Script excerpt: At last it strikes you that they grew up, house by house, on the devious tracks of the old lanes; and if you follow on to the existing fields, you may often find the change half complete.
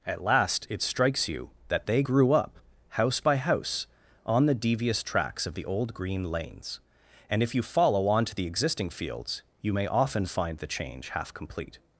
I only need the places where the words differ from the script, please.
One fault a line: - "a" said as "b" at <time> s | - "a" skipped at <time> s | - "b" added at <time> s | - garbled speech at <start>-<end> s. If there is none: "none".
- "green" added at 5.9 s